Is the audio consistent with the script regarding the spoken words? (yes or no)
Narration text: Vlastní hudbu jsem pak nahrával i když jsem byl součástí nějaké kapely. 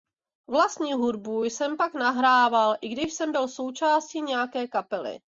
yes